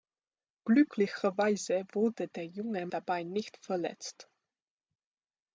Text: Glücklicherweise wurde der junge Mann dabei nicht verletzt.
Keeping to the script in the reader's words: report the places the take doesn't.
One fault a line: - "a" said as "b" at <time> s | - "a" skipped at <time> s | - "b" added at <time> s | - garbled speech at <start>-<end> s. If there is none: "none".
- "Mann" skipped at 2.9 s